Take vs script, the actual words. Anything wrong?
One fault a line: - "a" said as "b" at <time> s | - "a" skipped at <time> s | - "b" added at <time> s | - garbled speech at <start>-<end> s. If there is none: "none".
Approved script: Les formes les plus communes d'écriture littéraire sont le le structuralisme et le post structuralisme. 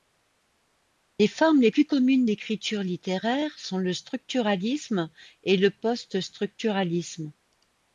- "le" skipped at 3.9 s